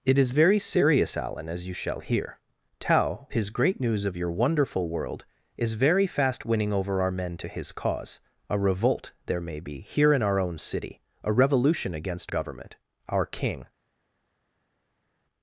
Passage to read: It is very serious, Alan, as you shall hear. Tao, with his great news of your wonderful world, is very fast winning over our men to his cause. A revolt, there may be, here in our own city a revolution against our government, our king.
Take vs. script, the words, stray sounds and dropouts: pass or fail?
fail